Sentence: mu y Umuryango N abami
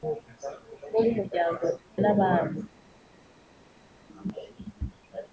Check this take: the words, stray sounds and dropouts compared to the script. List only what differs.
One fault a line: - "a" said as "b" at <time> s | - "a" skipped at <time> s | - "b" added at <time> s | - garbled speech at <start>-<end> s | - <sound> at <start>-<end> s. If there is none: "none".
none